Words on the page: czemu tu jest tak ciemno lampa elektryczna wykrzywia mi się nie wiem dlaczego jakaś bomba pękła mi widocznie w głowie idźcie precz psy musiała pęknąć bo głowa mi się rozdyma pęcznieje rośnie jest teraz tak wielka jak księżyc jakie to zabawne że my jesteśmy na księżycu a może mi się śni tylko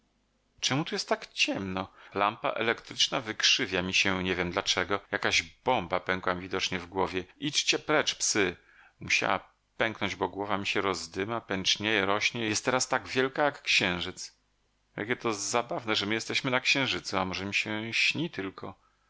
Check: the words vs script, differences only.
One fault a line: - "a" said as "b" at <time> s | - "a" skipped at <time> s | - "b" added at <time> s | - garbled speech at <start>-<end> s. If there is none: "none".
none